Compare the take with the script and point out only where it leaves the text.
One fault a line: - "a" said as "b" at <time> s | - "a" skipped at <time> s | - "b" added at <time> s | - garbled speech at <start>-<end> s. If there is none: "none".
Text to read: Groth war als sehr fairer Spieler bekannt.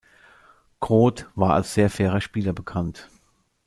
none